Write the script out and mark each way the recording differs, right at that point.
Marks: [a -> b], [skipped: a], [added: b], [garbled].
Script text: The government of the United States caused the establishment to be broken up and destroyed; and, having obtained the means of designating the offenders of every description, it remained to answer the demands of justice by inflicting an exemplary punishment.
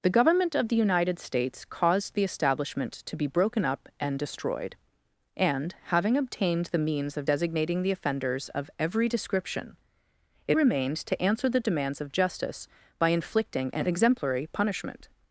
The government of the United States caused the establishment to be broken up and destroyed; and, having obtained the means of designating the offenders of every description, it remained to answer the demands of justice by inflicting an exemplary punishment.